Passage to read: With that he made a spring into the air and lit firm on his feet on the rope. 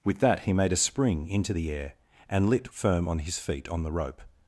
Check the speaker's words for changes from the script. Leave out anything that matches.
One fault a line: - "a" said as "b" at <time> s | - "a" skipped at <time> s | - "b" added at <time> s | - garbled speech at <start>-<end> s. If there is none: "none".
none